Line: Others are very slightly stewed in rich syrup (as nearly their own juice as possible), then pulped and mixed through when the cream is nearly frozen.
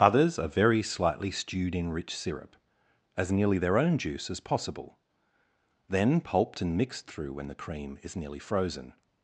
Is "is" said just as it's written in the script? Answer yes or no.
yes